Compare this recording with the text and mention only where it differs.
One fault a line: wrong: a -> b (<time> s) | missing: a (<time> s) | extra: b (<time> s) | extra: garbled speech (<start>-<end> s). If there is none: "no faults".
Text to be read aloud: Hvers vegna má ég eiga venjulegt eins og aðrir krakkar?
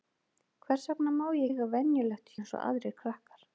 no faults